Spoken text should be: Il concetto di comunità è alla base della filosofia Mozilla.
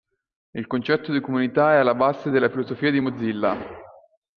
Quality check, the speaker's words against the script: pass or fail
fail